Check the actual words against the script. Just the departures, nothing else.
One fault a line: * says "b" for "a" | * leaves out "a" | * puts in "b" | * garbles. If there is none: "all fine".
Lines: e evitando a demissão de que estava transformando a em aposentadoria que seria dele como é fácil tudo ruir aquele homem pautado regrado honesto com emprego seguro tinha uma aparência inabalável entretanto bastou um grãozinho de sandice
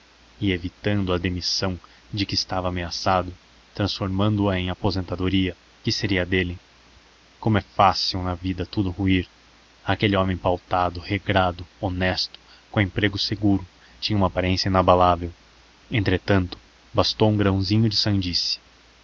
* puts in "ameaçado"
* puts in "na vida"